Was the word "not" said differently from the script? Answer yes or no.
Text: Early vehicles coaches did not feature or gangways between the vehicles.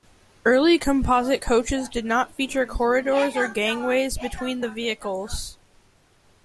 no